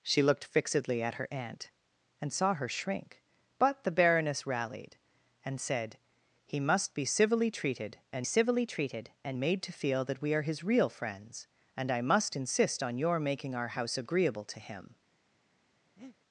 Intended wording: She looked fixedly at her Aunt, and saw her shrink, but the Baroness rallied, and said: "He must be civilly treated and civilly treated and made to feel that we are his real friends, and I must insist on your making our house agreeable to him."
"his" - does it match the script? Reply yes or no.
yes